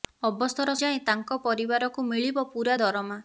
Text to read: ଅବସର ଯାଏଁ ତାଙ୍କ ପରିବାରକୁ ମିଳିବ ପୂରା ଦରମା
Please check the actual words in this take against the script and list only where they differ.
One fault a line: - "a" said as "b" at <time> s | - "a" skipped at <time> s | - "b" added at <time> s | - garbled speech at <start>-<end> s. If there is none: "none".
none